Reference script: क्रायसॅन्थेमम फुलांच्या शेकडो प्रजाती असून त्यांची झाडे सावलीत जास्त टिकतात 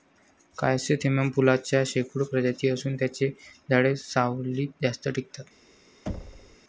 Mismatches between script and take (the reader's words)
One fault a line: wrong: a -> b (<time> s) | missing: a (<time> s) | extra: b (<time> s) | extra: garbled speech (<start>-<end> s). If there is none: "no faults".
no faults